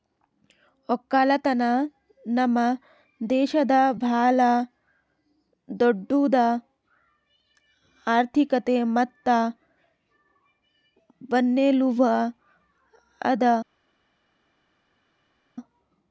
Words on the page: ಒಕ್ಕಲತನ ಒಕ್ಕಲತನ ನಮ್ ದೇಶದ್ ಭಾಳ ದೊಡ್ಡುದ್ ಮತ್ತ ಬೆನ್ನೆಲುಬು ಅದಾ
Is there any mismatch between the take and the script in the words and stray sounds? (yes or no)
yes